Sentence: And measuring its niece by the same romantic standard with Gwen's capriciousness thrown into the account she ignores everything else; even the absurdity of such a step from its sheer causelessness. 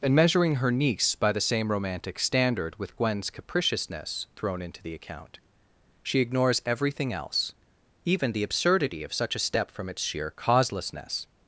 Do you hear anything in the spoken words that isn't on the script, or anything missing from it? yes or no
yes